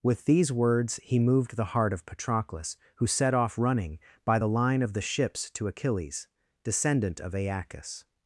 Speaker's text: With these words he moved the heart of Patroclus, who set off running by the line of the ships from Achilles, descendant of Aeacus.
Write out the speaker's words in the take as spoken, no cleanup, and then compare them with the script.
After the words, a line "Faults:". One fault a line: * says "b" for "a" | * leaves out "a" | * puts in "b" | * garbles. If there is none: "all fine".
With these words he moved the heart of Patroclus, who set off running by the line of the ships to Achilles, descendant of Aeacus.
Faults:
* says "to" for "from"